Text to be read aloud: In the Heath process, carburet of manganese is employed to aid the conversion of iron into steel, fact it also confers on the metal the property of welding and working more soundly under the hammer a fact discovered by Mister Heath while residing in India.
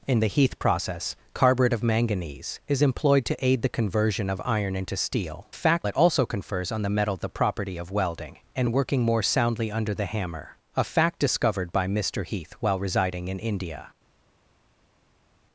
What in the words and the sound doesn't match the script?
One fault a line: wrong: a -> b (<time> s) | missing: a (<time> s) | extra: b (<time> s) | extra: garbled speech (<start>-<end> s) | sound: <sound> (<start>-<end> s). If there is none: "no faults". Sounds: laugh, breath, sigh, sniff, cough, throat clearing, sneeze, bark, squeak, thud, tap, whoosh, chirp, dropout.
no faults